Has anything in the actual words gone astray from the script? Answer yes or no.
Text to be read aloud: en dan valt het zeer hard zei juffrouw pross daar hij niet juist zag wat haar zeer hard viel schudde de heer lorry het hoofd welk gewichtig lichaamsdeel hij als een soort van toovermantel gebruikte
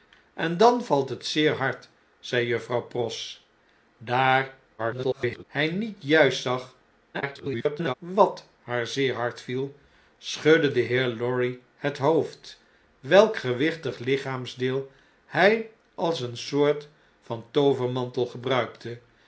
yes